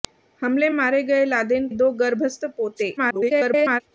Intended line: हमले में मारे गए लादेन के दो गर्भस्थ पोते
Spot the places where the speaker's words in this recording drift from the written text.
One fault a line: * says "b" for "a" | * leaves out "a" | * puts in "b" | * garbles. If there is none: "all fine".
* leaves out "में"
* leaves out "के"
* garbles